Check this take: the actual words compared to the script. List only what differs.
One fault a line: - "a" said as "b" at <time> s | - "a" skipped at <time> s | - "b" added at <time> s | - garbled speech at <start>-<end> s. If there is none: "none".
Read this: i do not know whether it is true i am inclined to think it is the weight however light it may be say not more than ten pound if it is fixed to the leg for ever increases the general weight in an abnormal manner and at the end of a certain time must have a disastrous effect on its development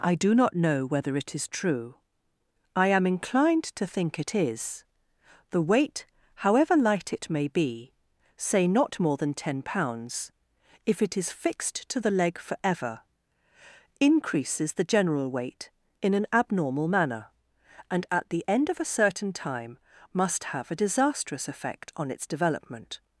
- "pound" said as "pounds" at 9.6 s